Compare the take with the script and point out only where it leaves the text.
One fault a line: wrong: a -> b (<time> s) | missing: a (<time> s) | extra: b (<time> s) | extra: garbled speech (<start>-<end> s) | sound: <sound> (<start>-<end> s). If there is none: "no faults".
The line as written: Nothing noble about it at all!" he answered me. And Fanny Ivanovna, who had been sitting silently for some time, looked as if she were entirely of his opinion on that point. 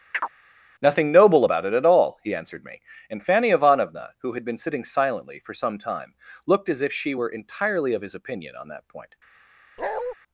sound: chirp (0.1-0.3 s)
sound: bark (9.8-10.1 s)